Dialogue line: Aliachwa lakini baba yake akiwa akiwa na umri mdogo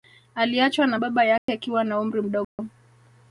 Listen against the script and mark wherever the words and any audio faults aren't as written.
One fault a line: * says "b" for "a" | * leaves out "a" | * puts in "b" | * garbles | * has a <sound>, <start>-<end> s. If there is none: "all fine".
* says "na" for "lakini"
* has a dropout, 1.4-1.5 s
* leaves out "akiwa"
* has a dropout, 2.4-2.6 s